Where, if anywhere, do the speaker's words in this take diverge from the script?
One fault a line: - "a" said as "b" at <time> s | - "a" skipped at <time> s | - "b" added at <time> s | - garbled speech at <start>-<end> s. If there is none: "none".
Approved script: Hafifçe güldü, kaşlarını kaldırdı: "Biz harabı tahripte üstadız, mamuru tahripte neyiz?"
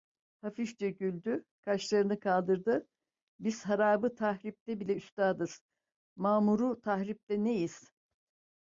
- "bile" added at 4.8 s